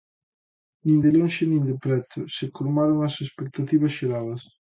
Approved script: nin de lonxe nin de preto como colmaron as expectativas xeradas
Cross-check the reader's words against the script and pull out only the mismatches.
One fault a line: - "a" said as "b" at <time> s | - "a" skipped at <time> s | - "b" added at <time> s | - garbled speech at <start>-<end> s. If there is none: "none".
- "como" said as "se" at 2.4 s